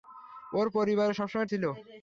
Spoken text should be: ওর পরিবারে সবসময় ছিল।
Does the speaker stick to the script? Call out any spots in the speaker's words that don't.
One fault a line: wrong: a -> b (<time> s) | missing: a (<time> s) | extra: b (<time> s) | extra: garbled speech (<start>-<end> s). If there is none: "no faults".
no faults